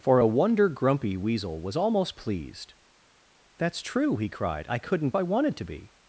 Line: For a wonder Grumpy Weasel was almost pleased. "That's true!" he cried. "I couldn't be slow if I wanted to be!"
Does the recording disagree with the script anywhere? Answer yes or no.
yes